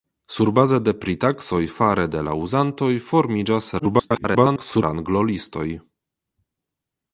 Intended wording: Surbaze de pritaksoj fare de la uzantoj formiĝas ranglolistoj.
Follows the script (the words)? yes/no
no